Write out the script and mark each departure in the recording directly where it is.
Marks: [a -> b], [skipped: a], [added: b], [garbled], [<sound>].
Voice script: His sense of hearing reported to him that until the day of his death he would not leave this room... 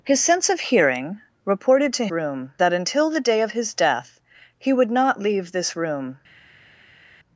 His sense of hearing reported to [him -> room] that until the day of his death he would not leave this room...